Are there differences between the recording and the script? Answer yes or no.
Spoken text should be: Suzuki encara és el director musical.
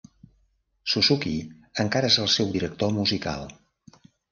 yes